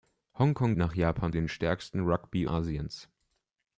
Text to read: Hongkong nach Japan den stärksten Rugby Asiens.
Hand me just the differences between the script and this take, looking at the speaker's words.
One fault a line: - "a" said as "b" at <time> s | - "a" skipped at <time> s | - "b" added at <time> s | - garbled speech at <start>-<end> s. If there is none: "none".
none